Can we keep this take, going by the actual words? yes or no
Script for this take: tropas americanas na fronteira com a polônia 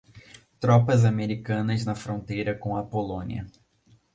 yes